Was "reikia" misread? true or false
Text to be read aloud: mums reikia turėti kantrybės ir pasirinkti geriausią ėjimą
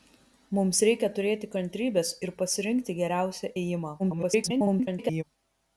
false